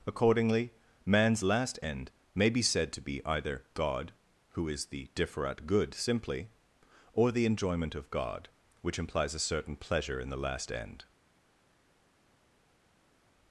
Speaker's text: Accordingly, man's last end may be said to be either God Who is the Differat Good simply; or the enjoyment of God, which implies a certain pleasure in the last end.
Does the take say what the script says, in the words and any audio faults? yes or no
yes